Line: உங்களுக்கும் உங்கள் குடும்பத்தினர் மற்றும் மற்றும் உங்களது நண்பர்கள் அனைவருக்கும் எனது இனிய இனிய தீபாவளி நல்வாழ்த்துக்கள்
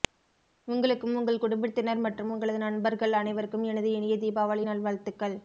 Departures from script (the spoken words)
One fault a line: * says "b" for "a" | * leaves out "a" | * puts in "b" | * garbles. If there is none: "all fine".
* leaves out "மற்றும்"
* leaves out "இனிய"